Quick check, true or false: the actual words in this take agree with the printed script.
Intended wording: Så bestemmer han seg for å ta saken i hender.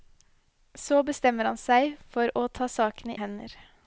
true